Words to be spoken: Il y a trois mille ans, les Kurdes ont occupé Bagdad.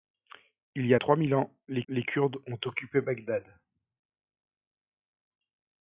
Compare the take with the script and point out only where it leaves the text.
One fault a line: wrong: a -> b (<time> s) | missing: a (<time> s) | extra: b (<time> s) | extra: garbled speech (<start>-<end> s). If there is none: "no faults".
extra: les (1.9 s)